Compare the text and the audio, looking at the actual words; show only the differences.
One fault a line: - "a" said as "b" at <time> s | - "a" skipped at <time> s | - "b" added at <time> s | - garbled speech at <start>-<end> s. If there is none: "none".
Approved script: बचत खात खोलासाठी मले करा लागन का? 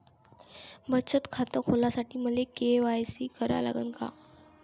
- "के.वाय.सी" added at 2.5 s